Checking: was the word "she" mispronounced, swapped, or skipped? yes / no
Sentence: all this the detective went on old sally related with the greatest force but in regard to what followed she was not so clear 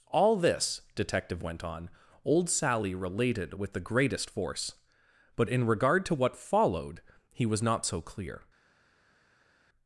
yes